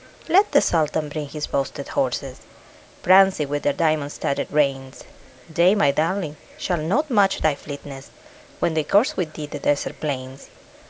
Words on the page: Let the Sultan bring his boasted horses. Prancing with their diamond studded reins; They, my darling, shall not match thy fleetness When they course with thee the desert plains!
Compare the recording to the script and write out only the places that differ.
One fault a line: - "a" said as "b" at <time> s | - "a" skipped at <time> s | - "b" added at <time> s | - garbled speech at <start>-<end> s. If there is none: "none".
none